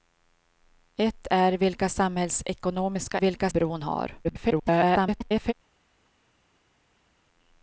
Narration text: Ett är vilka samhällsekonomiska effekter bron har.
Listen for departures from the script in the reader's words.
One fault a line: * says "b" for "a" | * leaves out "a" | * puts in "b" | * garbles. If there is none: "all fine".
* says "vilka" for "effekter"
* garbles